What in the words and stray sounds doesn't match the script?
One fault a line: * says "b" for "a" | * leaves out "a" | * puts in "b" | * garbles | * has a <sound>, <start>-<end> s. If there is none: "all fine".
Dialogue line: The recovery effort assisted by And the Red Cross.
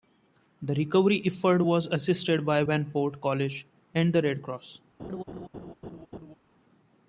* puts in "was"
* puts in "Vanport College"
* has a laugh, 5.0-6.4 s